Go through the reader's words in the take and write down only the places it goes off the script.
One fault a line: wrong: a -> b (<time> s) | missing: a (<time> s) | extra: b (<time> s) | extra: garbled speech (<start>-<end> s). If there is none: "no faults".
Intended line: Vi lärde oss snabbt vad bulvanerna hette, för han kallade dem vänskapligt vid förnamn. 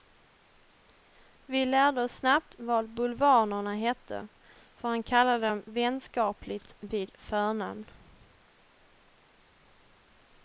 no faults